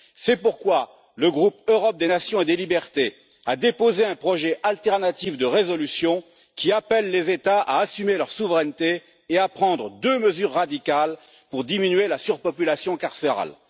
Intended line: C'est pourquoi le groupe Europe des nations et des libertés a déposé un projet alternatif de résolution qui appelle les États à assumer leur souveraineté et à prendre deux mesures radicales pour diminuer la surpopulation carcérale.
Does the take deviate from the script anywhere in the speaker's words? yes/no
no